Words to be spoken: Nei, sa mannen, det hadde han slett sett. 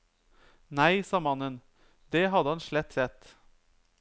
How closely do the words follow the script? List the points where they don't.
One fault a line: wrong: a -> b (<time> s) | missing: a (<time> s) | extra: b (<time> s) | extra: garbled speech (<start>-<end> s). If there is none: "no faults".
no faults